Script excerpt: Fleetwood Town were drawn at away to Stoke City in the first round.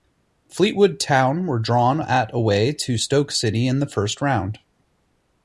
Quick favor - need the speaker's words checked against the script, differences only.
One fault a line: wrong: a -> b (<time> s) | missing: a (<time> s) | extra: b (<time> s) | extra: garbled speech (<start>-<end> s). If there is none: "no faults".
no faults